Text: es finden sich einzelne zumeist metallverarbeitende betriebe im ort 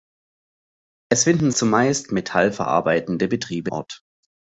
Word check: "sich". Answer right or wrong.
wrong